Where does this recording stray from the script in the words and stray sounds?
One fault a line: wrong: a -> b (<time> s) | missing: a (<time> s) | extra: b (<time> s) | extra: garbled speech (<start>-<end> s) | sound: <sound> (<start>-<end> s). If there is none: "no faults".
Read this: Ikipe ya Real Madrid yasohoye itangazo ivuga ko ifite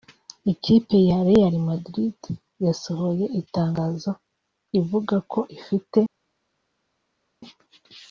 no faults